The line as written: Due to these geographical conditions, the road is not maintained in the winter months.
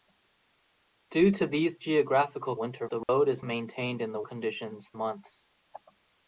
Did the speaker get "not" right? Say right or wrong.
wrong